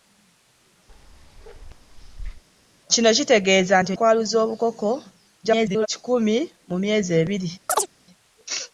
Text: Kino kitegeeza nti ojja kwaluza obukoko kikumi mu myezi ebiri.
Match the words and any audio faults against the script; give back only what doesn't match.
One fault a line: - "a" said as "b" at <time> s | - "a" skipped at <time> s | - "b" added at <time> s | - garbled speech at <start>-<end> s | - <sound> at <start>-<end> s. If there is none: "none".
- bark at 0.9-2.4 s
- "ojja" skipped at 3.9 s
- garbled speech at 5.4-5.9 s
- chirp at 7.7-7.9 s